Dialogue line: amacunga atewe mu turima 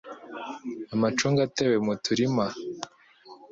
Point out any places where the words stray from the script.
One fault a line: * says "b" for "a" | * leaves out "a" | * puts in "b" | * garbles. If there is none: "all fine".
all fine